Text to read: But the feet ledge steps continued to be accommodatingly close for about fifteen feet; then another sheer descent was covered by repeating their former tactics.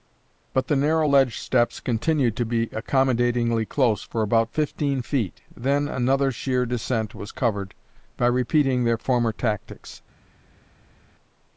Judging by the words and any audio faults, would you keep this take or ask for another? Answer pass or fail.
fail